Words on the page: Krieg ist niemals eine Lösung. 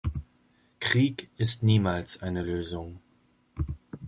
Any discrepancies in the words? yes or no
no